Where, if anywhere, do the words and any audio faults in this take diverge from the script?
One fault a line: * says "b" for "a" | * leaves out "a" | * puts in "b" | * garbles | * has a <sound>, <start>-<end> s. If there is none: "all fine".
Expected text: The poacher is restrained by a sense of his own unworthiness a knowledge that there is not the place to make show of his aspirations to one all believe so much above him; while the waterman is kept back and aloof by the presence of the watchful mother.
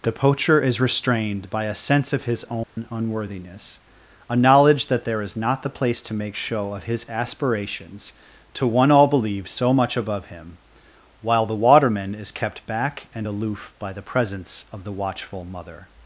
* has a dropout, 2.6-2.8 s